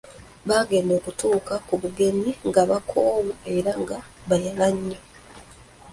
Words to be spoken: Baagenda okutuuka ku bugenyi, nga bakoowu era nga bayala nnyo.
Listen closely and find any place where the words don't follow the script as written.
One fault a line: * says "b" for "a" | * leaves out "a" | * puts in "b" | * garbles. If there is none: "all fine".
all fine